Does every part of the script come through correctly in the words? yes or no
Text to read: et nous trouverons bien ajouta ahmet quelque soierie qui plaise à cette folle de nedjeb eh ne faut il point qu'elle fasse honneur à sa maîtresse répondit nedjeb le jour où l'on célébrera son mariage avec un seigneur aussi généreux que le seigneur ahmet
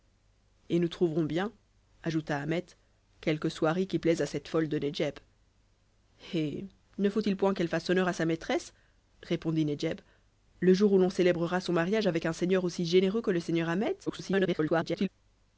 no